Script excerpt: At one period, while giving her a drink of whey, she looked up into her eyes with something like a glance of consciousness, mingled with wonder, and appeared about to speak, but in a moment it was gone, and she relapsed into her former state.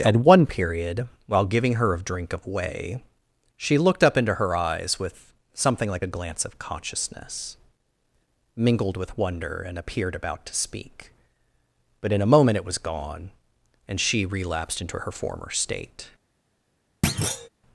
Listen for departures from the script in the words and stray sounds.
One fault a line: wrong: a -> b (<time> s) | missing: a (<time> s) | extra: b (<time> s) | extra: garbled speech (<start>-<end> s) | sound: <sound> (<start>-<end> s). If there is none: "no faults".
sound: thud (17.0-17.5 s)